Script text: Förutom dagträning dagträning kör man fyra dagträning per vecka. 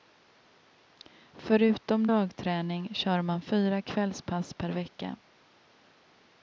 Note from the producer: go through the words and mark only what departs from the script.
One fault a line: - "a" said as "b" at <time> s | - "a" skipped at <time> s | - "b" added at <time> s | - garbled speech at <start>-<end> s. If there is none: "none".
- "dagträning" skipped at 2.9 s
- "dagträning" said as "kvällspass" at 3.8 s